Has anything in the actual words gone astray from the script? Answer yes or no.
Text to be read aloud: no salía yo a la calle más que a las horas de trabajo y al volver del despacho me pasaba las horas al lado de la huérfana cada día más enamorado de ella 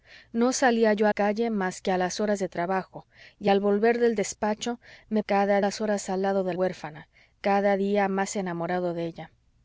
yes